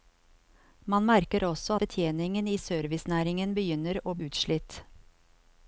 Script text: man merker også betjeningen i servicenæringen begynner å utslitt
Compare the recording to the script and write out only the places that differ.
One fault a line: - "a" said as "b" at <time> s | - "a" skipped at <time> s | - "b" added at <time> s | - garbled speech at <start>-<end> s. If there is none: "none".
none